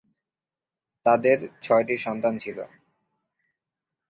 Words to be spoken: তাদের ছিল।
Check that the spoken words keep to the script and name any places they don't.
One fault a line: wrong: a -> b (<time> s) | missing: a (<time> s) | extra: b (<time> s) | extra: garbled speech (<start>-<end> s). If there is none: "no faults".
extra: ছয়টি সন্তান (1.6 s)